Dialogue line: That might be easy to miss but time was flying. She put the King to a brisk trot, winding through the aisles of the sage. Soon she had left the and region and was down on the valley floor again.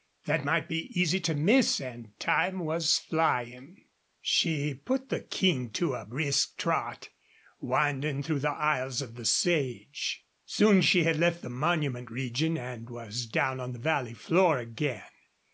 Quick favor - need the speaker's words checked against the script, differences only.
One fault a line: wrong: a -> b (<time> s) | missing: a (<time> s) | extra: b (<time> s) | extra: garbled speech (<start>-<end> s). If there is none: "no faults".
wrong: but -> and (1.8 s)
wrong: and -> monument (11.5 s)